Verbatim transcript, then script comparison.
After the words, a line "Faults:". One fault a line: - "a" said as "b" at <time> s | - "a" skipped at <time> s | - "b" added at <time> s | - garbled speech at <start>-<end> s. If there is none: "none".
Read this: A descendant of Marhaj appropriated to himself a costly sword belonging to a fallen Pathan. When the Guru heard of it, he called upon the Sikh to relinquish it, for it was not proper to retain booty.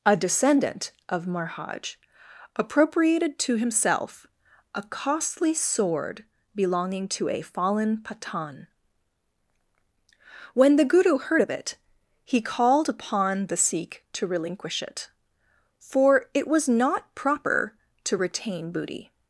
A descendant of Marhaj appropriated to himself a costly sword belonging to a fallen Pathan. When the Guru heard of it, he called upon the Sikh to relinquish it, for it was not proper to retain booty.
Faults:
none